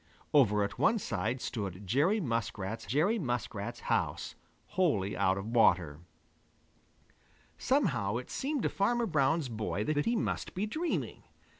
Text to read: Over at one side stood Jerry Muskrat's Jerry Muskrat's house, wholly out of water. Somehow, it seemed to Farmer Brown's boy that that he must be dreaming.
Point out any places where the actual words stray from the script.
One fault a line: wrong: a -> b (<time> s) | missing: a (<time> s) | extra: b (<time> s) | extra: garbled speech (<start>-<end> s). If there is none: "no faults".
no faults